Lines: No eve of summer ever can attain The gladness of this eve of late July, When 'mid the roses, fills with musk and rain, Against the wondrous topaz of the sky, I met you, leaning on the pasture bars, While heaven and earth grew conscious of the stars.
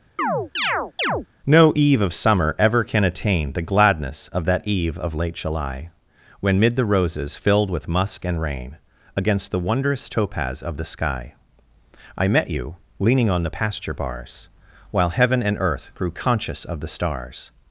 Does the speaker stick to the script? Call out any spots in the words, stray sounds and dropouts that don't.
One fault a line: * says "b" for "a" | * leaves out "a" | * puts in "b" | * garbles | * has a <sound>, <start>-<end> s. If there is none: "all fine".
* has a chirp, 0.2-1.3 s
* says "that" for "this"
* says "filled" for "fills"